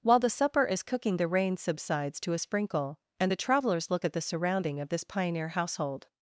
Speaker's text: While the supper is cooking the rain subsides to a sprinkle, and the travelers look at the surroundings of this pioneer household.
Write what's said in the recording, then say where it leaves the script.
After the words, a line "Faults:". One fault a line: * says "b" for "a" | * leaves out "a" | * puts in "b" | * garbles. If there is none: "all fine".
While the supper is cooking the rain subsides to a sprinkle, and the travelers look at the surrounding of this pioneer household.
Faults:
* says "surrounding" for "surroundings"